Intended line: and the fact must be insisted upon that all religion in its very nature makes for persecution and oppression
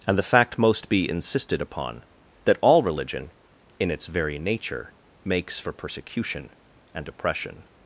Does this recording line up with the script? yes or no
no